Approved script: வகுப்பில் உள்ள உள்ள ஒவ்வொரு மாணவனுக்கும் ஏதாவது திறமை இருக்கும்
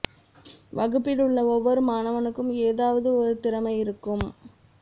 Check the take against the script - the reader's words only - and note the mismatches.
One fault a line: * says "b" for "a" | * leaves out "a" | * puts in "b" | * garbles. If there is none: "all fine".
* leaves out "உள்ள"
* puts in "ஒரு"